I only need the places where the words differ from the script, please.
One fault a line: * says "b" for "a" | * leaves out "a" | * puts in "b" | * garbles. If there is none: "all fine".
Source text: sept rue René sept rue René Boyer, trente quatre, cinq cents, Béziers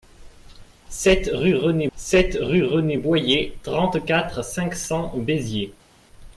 all fine